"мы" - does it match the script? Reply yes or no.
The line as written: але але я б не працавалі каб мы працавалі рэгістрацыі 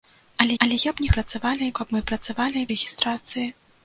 yes